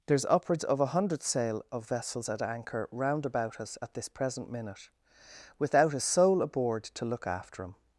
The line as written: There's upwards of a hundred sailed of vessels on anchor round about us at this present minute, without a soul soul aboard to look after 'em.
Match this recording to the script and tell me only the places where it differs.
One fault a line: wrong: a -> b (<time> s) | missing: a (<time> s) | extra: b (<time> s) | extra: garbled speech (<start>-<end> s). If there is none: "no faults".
wrong: sailed -> sail (1.2 s)
wrong: on -> at (2.3 s)
missing: soul (6.4 s)